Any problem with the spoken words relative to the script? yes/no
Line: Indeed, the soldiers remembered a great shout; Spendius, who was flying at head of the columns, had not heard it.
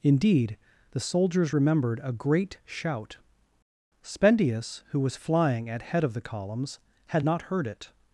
no